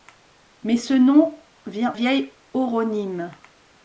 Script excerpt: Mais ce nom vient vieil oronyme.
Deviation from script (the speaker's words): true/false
false